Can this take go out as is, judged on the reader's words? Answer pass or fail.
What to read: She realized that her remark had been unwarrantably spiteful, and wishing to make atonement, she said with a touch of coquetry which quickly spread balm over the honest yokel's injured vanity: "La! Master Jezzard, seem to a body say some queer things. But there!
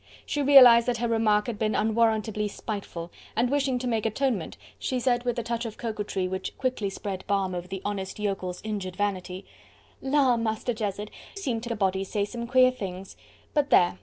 pass